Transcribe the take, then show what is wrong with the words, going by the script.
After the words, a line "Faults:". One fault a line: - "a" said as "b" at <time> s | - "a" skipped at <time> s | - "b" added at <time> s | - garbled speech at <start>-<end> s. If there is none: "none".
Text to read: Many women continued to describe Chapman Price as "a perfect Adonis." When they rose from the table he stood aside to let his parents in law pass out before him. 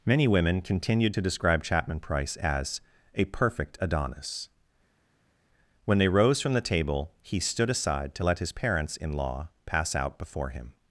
Many women continued to describe Chapman Price as "a perfect Adonis." When they rose from the table he stood aside to let his parents in law pass out before him.
Faults:
none